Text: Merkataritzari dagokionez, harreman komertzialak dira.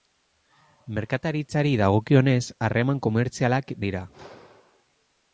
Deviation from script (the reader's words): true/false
false